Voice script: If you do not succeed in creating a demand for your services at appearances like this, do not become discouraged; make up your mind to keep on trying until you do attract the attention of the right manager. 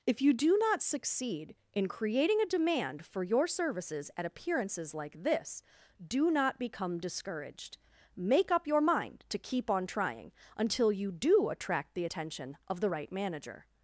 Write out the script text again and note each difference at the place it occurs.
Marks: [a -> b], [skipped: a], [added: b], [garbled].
If you do not succeed in creating a demand for your services at appearances like this, do not become discouraged; make up your mind to keep on trying until you do attract the attention of the right manager.